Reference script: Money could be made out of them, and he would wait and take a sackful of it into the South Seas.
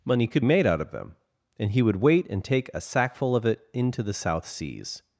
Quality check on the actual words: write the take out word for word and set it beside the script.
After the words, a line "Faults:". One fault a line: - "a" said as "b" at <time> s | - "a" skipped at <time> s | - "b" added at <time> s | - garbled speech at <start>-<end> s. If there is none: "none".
Money could made out of them, and he would wait and take a sackful of it into the South Seas.
Faults:
- "be" skipped at 0.4 s